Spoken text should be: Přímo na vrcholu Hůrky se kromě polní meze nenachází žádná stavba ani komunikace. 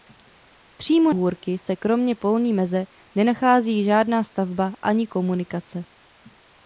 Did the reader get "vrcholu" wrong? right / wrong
wrong